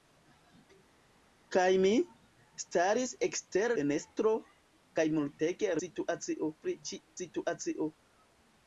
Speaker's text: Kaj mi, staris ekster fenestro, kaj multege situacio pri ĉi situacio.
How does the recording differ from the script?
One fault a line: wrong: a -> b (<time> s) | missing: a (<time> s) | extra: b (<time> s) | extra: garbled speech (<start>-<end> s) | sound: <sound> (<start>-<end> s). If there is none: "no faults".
no faults